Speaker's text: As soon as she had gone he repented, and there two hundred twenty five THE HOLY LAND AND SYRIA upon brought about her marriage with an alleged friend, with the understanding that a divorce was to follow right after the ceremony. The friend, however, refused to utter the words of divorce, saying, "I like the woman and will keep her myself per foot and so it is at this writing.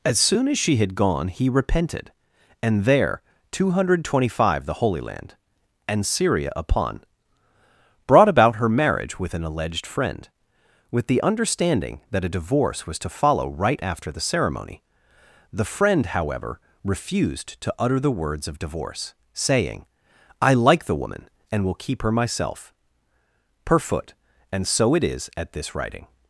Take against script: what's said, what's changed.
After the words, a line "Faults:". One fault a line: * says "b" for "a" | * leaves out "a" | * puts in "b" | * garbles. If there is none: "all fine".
As soon as she had gone he repented, and there two hundred twenty five THE HOLY LAND AND SYRIA upon brought about her marriage with an alleged friend, with the understanding that a divorce was to follow right after the ceremony. The friend, however, refused to utter the words of divorce, saying, "I like the woman and will keep her myself per foot and so it is at this writing.
Faults:
all fine